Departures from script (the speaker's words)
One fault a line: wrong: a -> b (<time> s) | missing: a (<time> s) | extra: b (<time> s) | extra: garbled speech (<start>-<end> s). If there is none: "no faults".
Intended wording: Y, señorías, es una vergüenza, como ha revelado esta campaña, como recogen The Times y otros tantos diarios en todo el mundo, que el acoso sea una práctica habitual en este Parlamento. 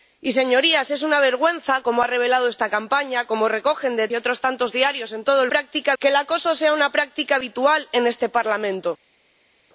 missing: Times (4.1 s)
wrong: mundo -> práctica (5.5 s)